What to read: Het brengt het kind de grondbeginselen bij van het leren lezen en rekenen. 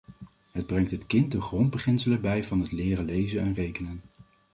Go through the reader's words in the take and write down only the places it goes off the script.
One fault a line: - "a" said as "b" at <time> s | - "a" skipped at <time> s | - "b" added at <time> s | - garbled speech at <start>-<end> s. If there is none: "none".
none